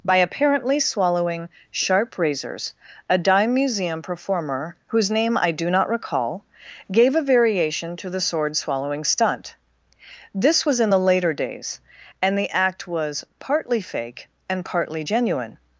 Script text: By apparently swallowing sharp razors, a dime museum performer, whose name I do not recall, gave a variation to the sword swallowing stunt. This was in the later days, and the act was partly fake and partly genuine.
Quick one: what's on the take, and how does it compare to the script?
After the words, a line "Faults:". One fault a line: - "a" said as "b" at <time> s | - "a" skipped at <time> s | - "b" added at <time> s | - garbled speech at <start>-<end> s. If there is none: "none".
By apparently swallowing sharp razors, a dime museum performer, whose name I do not recall, gave a variation to the sword swallowing stunt. This was in the later days, and the act was partly fake and partly genuine.
Faults:
none